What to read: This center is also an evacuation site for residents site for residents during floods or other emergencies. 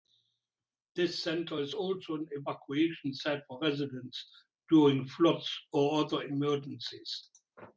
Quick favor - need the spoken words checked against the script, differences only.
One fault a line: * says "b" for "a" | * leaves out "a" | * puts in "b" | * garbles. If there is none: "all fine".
* leaves out "site for residents"